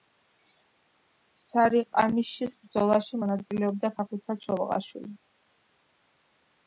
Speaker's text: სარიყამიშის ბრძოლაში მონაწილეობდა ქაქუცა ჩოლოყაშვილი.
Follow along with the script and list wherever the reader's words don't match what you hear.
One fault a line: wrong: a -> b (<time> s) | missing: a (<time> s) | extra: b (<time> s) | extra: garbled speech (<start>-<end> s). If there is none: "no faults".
no faults